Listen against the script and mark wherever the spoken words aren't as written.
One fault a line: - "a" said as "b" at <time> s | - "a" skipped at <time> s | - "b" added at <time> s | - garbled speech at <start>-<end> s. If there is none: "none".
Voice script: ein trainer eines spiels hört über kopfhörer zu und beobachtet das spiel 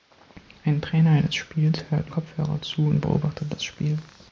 - "über" skipped at 2.1 s